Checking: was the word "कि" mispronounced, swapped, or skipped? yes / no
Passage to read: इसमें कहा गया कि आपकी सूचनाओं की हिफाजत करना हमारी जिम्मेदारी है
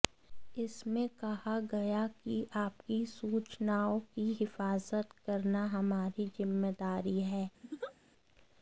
no